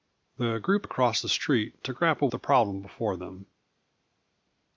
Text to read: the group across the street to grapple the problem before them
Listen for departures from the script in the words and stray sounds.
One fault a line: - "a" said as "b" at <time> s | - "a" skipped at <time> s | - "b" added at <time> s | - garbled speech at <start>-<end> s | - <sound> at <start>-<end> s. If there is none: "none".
none